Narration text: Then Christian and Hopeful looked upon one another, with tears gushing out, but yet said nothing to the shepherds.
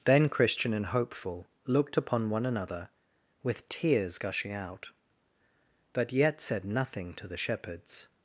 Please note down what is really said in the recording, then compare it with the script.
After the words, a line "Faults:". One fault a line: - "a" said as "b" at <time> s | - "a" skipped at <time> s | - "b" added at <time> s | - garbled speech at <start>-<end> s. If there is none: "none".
Then Christian and Hopeful looked upon one another, with tears gushing out, but yet said nothing to the shepherds.
Faults:
none